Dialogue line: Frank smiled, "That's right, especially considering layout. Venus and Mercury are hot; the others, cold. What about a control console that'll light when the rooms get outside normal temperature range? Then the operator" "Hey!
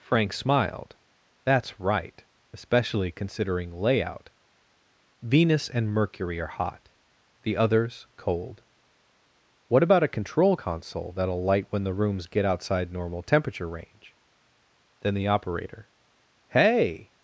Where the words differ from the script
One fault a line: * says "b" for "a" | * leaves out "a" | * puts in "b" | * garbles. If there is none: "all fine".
all fine